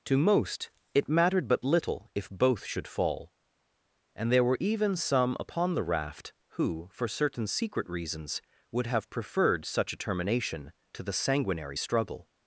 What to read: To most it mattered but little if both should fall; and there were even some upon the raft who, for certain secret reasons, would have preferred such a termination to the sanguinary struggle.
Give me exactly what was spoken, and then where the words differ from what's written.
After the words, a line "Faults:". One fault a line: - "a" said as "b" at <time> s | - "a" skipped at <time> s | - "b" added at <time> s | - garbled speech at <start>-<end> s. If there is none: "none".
To most it mattered but little if both should fall; and there were even some upon the raft who, for certain secret reasons, would have preferred such a termination to the sanguinary struggle.
Faults:
none